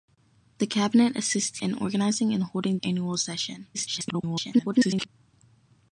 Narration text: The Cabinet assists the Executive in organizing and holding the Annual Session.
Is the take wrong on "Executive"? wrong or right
wrong